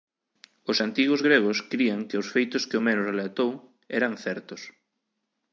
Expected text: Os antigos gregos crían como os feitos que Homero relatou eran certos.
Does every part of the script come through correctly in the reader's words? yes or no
no